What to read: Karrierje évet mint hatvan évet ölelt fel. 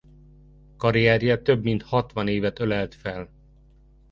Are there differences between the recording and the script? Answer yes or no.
yes